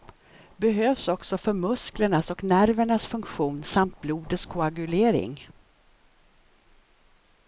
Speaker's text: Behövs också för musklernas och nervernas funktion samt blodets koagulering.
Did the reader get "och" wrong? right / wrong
right